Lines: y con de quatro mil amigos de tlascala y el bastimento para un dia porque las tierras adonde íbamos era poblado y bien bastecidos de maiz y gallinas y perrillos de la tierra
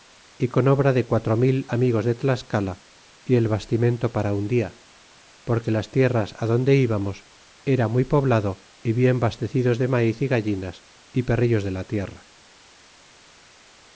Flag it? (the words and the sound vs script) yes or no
yes